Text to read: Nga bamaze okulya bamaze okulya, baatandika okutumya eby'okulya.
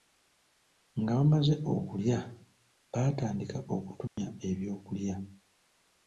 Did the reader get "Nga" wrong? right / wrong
right